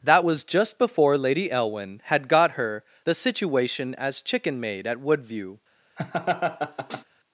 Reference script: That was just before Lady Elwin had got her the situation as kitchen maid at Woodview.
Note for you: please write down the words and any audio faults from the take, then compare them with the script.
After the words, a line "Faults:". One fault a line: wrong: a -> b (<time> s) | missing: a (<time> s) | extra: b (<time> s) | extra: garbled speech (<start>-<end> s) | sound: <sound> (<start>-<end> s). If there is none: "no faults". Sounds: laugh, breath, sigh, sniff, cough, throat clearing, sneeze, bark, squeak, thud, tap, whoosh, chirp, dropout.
That was just before Lady Elwin had got her the situation as chicken maid at Woodview.
Faults:
wrong: kitchen -> chicken (4.2 s)
sound: laugh (6.0-7.0 s)